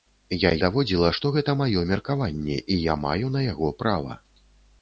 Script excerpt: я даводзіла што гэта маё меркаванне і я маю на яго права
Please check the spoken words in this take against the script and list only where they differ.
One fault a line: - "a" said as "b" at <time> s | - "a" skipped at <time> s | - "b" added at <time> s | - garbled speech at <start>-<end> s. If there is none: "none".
none